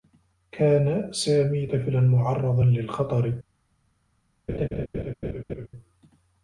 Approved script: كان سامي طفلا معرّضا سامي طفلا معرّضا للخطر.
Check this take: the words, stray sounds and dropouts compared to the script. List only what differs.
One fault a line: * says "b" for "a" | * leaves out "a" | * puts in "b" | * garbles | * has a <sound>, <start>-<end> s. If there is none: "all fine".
* leaves out "سامي طفلا معرّضا"
* has a laugh, 4.5-5.7 s